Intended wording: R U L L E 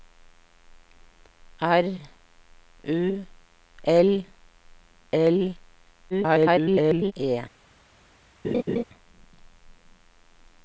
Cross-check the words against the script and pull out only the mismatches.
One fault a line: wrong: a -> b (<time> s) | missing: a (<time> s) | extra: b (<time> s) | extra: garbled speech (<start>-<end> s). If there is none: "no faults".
extra: garbled speech (6.1-7.1 s)